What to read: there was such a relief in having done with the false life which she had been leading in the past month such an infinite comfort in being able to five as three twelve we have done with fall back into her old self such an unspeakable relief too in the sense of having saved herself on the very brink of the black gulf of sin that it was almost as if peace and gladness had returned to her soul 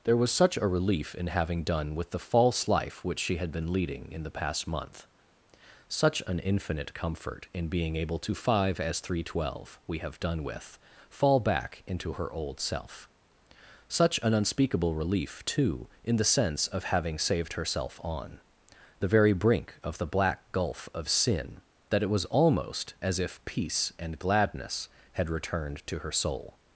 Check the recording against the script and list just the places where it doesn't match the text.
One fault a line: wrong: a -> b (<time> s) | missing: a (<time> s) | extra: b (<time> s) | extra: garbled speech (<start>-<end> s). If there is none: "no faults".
no faults